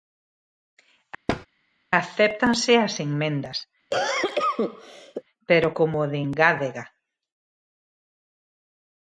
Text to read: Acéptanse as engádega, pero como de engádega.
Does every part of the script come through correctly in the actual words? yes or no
no